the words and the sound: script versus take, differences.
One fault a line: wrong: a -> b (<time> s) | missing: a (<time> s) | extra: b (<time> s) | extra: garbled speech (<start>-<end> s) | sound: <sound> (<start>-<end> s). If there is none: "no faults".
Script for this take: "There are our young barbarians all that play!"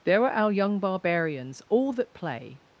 no faults